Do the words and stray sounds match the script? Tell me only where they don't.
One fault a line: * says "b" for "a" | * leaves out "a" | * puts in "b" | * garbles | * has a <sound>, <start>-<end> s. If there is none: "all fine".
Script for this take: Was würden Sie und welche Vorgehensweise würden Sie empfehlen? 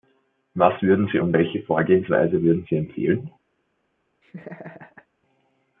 * has a laugh, 4.2-5.1 s